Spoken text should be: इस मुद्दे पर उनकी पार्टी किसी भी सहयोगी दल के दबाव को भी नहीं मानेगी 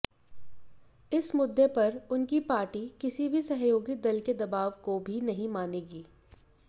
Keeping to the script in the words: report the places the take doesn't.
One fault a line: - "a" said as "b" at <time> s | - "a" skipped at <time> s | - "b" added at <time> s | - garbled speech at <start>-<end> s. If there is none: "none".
none